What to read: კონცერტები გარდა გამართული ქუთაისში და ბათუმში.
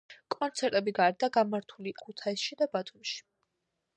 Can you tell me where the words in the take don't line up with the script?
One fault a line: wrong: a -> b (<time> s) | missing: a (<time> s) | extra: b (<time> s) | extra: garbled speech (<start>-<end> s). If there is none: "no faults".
no faults